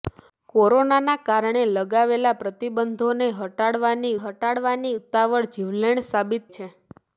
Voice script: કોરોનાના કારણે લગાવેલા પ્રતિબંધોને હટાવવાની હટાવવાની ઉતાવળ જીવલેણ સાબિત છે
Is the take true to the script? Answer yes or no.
yes